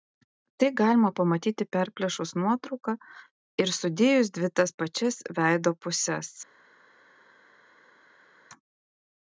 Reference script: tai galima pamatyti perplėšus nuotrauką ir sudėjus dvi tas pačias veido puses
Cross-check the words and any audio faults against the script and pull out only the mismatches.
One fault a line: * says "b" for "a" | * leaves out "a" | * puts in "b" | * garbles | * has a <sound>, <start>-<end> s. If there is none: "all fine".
all fine